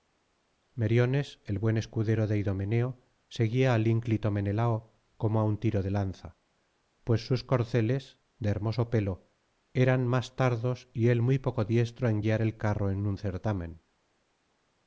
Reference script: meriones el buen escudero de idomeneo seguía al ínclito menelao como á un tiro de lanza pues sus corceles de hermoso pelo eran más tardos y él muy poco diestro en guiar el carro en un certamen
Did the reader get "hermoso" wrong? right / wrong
right